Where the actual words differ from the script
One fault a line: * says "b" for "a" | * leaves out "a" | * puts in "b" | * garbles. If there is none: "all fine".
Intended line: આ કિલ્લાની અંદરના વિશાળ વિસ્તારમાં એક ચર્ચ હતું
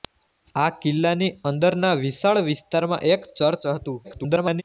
* garbles